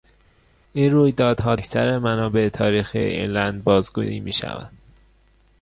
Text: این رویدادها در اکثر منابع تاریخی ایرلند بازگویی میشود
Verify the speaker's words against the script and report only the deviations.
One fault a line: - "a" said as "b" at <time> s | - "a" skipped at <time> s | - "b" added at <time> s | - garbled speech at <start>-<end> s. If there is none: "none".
- "در" skipped at 1.5 s